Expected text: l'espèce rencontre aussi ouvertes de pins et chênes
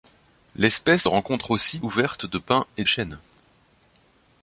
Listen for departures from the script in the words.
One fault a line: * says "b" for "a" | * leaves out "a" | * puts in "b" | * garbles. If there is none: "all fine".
all fine